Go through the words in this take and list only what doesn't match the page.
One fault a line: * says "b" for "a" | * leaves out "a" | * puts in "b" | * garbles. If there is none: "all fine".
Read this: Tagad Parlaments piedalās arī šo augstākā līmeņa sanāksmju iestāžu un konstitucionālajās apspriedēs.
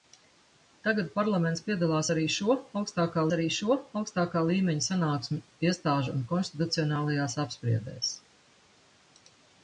* puts in "arī šo augstākā"